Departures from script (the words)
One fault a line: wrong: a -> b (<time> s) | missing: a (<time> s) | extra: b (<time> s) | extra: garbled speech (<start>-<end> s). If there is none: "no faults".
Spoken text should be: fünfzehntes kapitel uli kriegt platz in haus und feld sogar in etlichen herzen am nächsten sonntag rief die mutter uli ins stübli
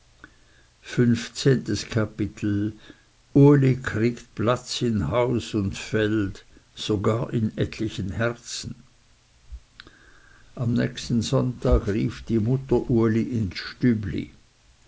no faults